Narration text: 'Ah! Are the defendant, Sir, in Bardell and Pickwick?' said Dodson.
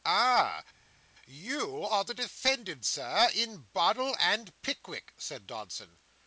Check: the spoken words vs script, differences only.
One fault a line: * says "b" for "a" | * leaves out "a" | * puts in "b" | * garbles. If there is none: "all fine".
* puts in "You"